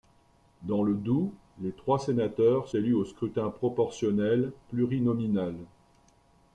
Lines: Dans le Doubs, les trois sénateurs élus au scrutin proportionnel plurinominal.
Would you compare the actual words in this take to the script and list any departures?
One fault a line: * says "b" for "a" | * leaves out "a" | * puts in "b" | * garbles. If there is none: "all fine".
all fine